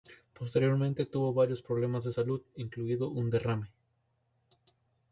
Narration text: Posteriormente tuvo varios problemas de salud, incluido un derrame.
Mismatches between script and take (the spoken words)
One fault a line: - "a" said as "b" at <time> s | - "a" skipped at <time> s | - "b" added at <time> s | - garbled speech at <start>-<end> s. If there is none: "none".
none